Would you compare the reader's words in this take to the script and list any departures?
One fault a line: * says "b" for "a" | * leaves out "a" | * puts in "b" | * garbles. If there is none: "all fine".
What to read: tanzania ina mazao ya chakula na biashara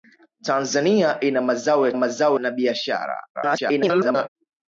* says "mazao" for "chakula"
* garbles